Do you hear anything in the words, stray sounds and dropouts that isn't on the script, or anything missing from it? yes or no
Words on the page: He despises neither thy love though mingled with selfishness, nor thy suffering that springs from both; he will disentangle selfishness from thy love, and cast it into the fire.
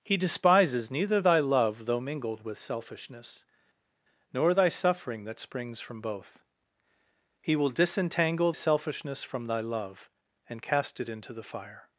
no